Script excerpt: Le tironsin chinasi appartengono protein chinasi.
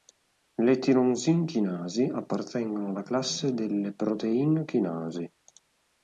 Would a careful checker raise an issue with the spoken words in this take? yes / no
yes